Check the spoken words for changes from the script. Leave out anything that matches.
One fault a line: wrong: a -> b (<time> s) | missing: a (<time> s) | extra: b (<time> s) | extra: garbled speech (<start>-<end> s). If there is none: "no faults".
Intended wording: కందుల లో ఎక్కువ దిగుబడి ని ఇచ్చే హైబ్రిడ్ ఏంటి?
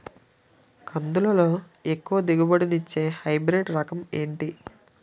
extra: రకం (3.7 s)